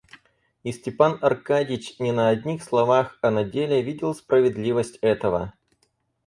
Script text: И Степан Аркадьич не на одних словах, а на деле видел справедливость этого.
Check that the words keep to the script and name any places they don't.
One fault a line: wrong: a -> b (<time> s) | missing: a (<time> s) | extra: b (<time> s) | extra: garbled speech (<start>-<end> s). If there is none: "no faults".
no faults